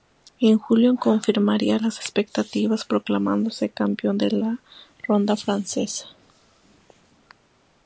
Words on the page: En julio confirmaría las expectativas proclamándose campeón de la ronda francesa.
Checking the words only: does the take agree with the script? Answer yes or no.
yes